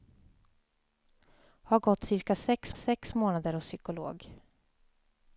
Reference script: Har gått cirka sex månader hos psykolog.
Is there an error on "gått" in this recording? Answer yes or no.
no